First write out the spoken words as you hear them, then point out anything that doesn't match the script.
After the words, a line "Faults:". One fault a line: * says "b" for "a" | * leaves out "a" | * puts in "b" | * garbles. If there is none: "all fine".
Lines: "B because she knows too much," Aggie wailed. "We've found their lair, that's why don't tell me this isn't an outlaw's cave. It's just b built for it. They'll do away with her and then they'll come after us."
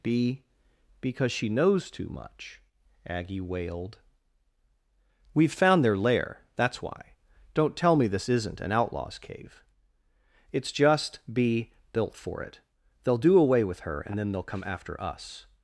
"B because she knows too much," Aggie wailed. "We've found their lair, that's why don't tell me this isn't an outlaw's cave. It's just b built for it. They'll do away with her and then they'll come after us."
Faults:
all fine